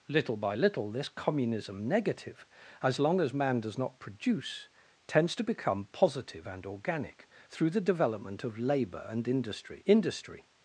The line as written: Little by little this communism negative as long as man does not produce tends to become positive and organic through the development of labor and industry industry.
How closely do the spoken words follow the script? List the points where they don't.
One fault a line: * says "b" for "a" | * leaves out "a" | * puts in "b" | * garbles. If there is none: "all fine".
all fine